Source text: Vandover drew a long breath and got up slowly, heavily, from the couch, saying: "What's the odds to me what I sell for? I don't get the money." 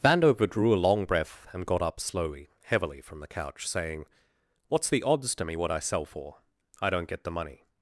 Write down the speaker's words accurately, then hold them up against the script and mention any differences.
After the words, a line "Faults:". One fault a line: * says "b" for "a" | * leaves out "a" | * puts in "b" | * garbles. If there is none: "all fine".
Vandover drew a long breath and got up slowly, heavily, from the couch, saying: "What's the odds to me what I sell for? I don't get the money."
Faults:
all fine